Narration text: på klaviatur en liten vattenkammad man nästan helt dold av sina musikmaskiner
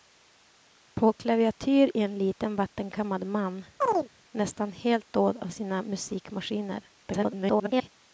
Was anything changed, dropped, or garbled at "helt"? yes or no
no